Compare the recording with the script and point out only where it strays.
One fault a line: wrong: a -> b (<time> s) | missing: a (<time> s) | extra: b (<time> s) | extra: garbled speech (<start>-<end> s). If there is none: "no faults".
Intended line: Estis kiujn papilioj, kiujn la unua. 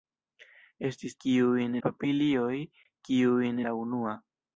no faults